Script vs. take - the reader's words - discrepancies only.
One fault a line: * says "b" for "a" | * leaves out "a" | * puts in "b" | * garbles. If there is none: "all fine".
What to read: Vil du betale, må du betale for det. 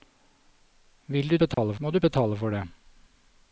all fine